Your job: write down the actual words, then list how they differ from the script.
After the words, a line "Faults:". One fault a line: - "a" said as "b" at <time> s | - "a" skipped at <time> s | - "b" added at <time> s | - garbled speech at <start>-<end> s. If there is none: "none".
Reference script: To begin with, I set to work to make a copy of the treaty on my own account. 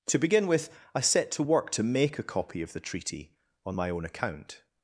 To begin with, I set to work to make a copy of the treaty on my own account.
Faults:
none